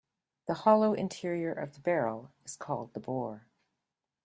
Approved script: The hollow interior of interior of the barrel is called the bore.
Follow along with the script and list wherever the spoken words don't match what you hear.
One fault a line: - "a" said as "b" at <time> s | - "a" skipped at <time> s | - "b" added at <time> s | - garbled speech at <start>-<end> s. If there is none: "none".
- "interior of" skipped at 1.8 s